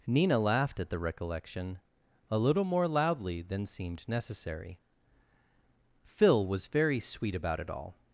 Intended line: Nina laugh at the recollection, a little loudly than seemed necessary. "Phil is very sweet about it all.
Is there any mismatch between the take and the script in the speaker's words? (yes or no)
yes